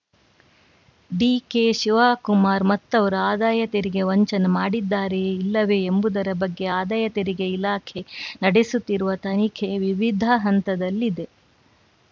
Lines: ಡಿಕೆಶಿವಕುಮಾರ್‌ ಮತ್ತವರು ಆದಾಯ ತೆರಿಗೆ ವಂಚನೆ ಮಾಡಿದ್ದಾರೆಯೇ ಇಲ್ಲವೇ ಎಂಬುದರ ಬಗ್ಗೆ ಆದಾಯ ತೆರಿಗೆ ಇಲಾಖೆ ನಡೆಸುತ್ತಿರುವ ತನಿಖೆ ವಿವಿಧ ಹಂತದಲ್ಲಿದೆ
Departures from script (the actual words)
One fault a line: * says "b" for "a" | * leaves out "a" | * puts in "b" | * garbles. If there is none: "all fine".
all fine